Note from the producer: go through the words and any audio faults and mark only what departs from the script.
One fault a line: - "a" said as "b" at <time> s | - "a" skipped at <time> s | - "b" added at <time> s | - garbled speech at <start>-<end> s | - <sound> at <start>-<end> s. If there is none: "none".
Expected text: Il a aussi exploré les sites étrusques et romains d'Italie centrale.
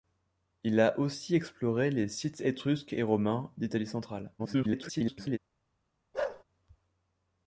- garbled speech at 4.4-5.4 s
- bark at 6.1-6.4 s